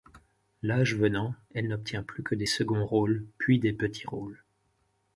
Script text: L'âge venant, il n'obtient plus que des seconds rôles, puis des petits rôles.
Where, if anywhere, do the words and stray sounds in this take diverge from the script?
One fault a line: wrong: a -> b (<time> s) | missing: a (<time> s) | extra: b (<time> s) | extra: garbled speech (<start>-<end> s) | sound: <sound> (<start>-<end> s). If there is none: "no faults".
wrong: il -> elle (1.5 s)